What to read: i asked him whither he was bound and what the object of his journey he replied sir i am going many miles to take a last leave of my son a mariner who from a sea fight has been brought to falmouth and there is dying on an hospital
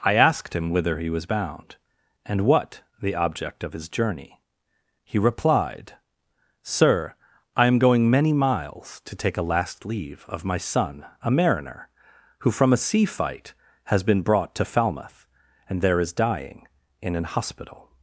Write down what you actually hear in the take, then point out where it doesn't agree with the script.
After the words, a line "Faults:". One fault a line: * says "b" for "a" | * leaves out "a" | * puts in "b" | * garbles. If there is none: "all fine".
i asked him whither he was bound and what the object of his journey he replied sir i am going many miles to take a last leave of my son a mariner who from a sea fight has been brought to falmouth and there is dying in an hospital
Faults:
* says "in" for "on"